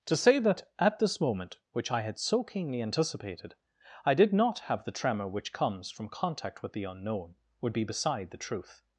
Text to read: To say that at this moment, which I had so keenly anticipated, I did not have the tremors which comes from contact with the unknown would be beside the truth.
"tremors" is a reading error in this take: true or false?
true